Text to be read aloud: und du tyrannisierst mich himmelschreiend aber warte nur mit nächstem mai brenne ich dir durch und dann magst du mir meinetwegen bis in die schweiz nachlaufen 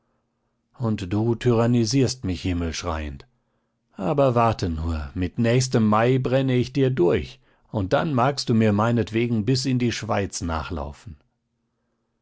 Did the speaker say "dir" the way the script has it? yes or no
yes